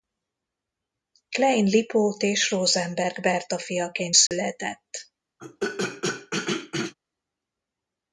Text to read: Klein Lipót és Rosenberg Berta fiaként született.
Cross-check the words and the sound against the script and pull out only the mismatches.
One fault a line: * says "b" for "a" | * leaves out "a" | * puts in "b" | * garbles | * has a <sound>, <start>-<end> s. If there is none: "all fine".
* has a dropout, 4.3-4.3 s
* has a throat clearing, 5.4-6.9 s